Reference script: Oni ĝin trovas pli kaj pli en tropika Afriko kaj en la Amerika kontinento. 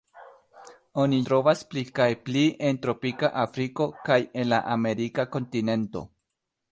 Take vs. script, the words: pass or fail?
fail